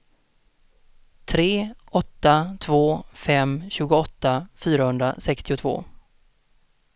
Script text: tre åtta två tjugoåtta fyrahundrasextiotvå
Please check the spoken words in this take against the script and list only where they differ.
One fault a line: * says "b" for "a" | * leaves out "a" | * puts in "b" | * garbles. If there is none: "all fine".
* puts in "fem"